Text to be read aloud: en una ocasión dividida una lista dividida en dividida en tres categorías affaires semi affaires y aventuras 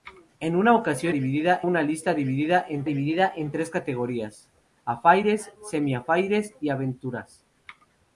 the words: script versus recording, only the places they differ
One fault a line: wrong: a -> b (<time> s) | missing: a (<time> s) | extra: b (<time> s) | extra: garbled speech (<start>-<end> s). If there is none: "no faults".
no faults